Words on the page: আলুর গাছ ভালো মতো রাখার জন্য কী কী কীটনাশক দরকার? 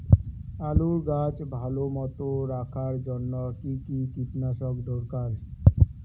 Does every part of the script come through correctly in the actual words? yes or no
yes